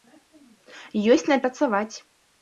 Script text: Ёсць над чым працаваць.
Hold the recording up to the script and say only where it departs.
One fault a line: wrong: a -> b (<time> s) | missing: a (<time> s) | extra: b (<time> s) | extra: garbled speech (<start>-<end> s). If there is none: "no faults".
missing: чым (1.4 s)